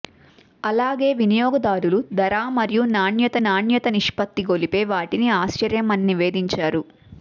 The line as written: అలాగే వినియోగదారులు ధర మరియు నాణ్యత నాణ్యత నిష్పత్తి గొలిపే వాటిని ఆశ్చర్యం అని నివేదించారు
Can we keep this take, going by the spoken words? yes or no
yes